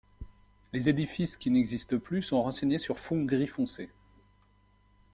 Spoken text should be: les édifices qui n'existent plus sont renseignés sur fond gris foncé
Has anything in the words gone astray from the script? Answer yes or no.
no